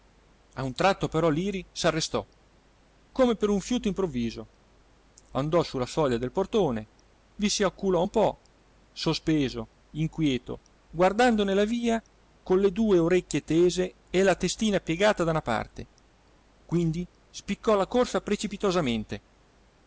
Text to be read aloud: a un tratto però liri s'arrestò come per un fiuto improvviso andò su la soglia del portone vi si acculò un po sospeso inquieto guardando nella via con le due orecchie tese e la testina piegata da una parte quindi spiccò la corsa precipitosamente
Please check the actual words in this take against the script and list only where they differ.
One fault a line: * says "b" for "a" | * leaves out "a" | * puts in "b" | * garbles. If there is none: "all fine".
all fine